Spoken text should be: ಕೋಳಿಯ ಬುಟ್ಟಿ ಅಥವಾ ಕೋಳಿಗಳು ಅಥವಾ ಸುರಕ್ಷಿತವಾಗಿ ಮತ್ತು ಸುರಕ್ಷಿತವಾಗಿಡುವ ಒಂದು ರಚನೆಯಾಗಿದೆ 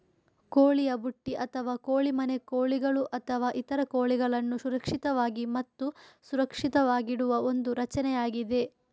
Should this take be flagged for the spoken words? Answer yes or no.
yes